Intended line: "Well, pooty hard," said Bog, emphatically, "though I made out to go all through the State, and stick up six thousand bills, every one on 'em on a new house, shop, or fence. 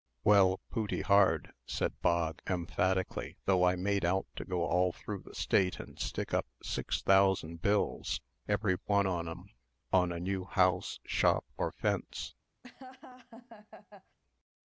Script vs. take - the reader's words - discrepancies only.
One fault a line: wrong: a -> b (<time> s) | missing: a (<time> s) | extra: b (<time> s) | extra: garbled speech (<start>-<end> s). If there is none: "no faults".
no faults